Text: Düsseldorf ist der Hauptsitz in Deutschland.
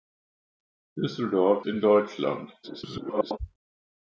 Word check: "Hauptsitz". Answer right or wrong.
wrong